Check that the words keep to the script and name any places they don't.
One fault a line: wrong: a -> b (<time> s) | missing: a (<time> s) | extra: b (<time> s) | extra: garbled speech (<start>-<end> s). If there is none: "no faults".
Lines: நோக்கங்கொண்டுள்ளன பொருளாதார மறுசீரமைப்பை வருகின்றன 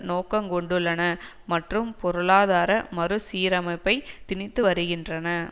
extra: மற்றும் (1.5 s)
extra: திணித்து (4.3 s)